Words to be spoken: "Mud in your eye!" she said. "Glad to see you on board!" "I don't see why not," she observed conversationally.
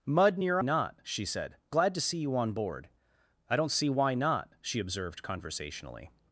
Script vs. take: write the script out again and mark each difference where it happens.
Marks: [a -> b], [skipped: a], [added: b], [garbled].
"Mud in your [eye!" -> not] she said. "Glad to see you on board!" "I don't see why not," she observed conversationally.